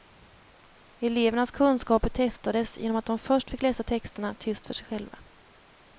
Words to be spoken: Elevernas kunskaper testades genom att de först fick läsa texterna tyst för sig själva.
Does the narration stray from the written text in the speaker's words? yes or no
no